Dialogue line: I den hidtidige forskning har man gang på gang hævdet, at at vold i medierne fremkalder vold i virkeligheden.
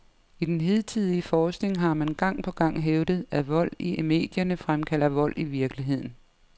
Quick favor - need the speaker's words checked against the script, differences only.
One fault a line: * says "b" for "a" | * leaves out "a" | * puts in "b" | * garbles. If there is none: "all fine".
* leaves out "at"